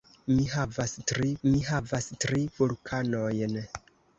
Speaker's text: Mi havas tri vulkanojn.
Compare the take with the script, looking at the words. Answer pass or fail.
fail